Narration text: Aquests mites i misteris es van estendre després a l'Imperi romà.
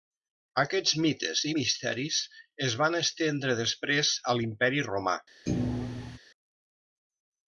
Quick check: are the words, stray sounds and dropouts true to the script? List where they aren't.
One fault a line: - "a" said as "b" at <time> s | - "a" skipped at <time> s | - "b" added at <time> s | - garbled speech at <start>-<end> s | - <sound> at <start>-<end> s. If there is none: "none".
- thud at 5.5-6.2 s